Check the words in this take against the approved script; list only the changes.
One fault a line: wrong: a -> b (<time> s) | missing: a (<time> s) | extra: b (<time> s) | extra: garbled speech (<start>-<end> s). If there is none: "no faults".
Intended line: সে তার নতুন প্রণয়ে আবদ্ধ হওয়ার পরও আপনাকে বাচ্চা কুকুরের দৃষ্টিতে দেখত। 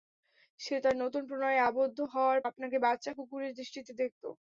missing: পরও (2.4 s)